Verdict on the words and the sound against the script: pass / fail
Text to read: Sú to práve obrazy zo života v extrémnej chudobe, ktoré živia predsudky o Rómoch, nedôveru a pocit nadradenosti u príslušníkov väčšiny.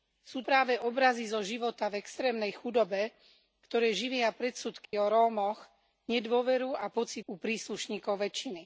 fail